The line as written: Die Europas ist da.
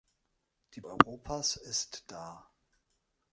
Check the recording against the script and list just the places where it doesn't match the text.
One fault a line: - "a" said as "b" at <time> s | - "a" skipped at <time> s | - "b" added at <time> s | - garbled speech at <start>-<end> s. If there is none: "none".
none